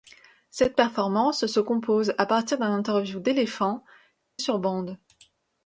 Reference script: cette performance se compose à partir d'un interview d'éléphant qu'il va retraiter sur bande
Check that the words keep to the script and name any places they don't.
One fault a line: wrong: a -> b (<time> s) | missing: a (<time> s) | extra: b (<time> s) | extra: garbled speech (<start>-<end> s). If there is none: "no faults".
missing: qu'il va retraiter (3.8 s)